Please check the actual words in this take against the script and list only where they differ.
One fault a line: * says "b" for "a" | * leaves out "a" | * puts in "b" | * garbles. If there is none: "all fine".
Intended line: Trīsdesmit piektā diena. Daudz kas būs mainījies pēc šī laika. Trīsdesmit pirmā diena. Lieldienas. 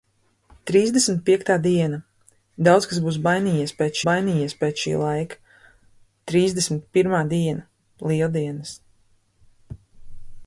* puts in "mainījies pēc"